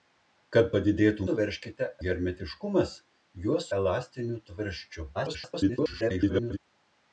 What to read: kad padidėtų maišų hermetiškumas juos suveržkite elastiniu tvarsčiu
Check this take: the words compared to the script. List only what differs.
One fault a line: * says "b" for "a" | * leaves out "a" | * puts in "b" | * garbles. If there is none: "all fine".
* says "suveržkite" for "maišų"
* leaves out "suveržkite"
* garbles